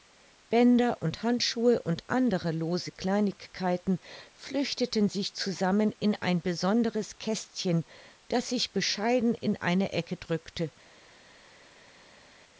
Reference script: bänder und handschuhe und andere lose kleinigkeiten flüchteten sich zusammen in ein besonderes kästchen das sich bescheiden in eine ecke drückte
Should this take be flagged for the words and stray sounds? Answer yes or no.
no